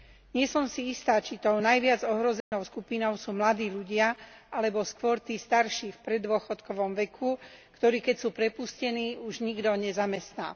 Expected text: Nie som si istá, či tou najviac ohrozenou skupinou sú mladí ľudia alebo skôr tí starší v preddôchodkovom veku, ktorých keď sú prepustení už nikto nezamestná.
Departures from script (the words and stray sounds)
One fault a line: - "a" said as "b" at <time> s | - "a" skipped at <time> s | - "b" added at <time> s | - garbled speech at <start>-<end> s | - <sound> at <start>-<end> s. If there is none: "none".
- dropout at 2.4-2.5 s